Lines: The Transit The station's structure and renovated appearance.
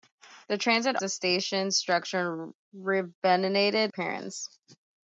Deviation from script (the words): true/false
false